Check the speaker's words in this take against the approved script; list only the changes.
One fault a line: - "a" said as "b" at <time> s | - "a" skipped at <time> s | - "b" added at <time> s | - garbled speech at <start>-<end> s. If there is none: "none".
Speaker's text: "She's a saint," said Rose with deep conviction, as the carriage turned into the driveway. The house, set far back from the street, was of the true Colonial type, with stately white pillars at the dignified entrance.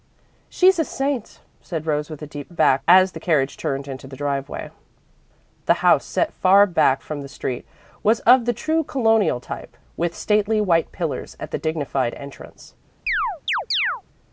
- "conviction" said as "back" at 2.5 s